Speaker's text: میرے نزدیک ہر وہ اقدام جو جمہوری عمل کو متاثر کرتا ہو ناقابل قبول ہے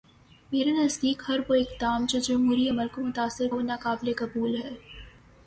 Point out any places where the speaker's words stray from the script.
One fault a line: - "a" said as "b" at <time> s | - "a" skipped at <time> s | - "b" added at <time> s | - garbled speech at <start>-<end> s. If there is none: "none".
- "کرتا" skipped at 3.5 s